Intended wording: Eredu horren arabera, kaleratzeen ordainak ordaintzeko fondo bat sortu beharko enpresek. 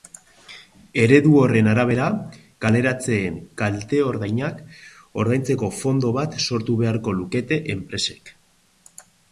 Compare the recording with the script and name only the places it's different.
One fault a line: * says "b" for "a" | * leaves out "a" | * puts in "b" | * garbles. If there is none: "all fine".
* puts in "kalte"
* puts in "lukete"